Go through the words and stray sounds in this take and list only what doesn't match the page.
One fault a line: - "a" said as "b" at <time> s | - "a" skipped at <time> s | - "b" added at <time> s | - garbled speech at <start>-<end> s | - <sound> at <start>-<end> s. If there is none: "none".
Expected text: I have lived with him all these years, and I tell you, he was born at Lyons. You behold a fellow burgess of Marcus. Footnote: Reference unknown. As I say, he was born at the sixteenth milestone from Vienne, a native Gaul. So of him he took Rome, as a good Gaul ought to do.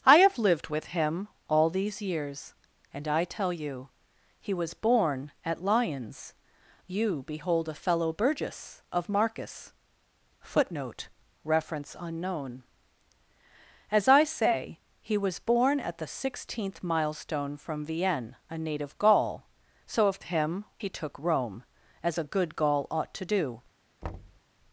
- thud at 24.0-24.4 s